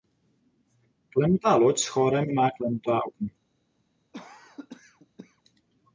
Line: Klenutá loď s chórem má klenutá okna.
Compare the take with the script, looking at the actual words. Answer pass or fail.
pass